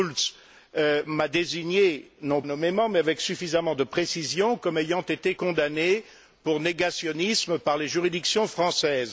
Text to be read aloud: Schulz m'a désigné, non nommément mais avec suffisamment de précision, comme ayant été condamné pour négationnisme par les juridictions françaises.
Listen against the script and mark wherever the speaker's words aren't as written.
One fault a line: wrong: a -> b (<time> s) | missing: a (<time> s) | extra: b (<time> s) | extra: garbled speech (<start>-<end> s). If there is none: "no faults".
no faults